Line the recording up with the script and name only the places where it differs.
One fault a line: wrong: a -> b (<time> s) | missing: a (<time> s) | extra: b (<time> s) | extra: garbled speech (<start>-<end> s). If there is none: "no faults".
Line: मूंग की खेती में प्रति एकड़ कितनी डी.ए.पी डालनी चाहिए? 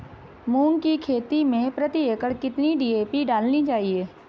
no faults